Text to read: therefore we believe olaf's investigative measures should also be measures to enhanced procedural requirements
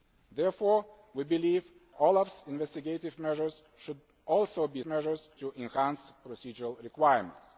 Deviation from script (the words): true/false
false